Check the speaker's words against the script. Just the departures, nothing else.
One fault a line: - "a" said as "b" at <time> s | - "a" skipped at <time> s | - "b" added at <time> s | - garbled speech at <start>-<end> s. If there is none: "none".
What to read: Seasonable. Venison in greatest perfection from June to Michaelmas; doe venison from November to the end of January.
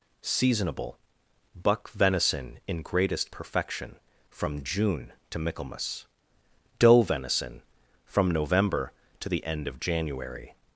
- "Buck" added at 1.6 s